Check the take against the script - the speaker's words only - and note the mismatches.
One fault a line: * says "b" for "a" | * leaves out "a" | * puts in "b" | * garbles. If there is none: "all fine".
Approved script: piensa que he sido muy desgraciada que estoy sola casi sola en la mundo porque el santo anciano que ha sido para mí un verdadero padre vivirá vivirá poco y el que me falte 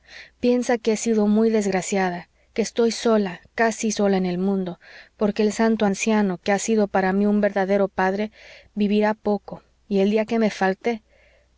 * says "el" for "la"
* leaves out "vivirá"
* puts in "día"